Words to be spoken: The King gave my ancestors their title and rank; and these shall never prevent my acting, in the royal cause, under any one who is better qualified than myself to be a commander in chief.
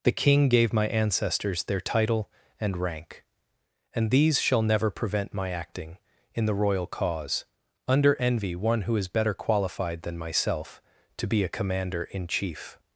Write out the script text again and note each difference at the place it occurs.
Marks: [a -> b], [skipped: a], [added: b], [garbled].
The King gave my ancestors their title and rank; and these shall never prevent my acting, in the royal cause, under [any -> envy] one who is better qualified than myself to be a commander in chief.